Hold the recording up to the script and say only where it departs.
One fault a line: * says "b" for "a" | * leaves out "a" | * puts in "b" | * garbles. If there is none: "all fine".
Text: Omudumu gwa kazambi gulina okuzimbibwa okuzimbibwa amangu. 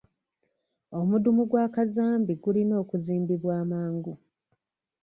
* leaves out "okuzimbibwa"